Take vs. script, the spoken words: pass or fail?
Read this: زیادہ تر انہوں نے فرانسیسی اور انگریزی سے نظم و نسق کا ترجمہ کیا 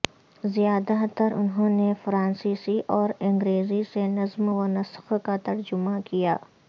pass